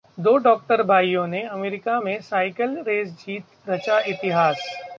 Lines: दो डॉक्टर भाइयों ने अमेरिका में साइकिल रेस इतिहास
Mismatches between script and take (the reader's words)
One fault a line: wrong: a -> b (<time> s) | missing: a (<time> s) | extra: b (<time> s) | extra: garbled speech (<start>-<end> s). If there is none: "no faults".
extra: जीत रचा (3.2 s)